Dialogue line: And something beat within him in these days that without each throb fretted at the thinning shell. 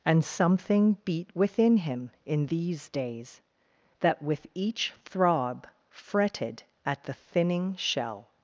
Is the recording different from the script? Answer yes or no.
yes